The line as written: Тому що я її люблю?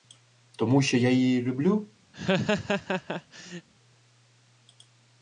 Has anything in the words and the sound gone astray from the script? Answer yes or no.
yes